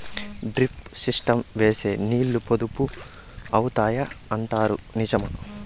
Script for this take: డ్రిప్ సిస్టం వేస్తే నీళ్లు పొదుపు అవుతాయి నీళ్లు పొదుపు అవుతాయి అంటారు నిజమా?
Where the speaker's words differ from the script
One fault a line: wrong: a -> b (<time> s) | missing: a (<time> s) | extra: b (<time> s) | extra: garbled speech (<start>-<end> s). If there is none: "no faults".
missing: నీళ్లు పొదుపు అవుతాయి (4.0 s)